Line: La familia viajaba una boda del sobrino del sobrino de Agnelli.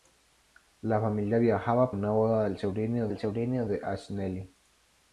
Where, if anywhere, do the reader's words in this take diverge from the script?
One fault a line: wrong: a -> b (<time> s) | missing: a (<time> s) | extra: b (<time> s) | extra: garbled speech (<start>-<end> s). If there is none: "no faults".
no faults